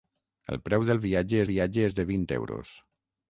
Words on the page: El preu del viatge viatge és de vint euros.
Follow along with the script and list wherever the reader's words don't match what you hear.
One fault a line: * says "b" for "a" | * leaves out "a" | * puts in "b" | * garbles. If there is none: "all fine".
all fine